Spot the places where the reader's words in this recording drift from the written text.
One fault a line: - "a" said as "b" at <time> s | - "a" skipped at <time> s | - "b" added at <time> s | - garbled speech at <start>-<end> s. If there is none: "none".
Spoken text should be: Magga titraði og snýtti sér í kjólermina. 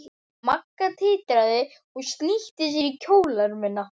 none